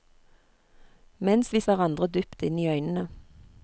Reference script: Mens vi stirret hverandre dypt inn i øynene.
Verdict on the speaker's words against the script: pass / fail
fail